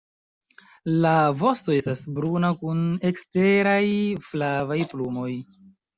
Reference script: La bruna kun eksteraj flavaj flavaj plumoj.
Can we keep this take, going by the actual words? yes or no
no